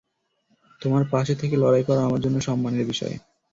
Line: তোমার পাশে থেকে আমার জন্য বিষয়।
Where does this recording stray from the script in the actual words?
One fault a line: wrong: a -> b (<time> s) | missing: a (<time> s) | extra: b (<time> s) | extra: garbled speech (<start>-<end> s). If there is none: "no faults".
extra: লড়াই করা (1.6 s)
extra: সম্মানের (2.4 s)